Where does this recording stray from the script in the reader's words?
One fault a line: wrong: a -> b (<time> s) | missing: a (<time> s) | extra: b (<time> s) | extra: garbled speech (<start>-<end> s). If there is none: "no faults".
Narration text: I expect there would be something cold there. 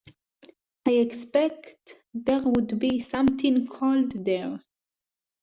no faults